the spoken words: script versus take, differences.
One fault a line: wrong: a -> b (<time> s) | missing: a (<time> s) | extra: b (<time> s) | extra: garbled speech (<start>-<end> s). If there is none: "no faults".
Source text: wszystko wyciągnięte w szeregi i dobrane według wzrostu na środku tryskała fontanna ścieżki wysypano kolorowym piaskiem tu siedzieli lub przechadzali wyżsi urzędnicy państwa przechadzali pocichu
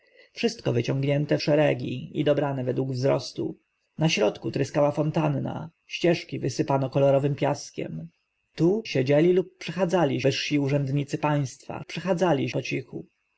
no faults